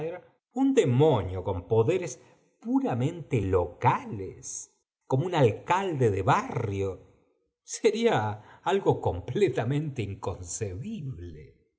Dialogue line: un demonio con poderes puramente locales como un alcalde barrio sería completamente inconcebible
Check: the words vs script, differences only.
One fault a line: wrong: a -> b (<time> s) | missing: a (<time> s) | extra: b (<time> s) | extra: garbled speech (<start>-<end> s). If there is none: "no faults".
extra: de (6.1 s)
extra: algo (8.6 s)